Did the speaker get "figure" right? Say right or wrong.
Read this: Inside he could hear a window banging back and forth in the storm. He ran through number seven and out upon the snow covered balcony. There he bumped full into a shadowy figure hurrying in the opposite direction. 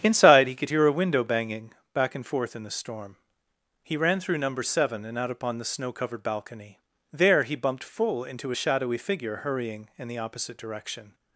right